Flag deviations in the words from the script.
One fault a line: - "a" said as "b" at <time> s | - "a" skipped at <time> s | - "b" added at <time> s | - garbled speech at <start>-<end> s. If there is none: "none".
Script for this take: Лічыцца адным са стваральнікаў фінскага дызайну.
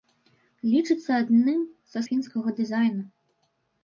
- "стваральнікаў" skipped at 2.0 s